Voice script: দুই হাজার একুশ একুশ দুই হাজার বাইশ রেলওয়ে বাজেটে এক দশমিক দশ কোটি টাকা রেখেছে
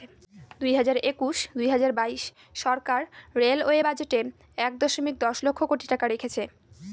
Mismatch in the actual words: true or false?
true